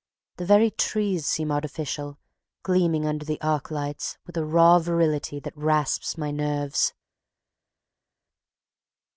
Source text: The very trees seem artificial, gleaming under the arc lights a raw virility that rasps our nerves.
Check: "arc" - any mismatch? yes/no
no